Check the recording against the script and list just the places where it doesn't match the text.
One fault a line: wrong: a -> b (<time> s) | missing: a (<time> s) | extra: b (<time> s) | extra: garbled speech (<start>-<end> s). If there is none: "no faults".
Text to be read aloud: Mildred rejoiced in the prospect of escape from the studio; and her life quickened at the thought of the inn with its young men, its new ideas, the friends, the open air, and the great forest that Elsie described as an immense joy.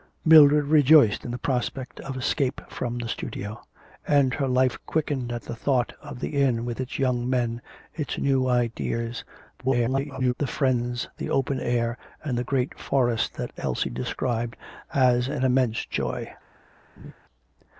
extra: garbled speech (9.6-10.3 s)